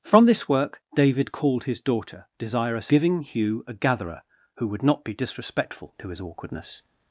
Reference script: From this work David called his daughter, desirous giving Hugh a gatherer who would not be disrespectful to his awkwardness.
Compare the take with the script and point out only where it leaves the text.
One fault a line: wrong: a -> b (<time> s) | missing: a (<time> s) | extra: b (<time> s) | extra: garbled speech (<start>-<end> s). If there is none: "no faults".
no faults